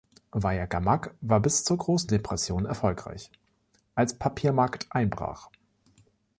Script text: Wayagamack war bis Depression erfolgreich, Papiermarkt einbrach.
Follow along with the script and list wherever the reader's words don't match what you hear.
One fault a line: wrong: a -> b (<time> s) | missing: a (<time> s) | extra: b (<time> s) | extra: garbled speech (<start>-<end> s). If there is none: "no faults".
extra: zur Großen (1.6 s)
extra: als (4.0 s)